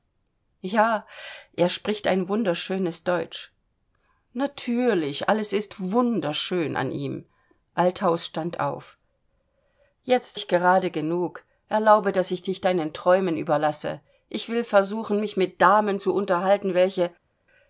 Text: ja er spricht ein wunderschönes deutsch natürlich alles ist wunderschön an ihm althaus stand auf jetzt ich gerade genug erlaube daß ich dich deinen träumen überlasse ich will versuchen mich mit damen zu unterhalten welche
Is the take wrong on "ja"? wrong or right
right